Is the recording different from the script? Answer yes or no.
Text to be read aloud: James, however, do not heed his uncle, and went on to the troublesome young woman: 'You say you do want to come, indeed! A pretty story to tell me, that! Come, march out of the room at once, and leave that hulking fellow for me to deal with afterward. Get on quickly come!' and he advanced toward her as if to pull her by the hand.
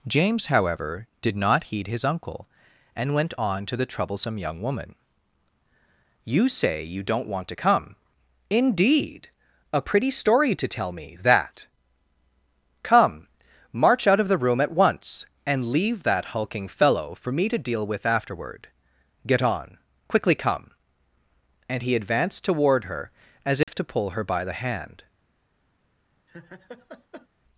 yes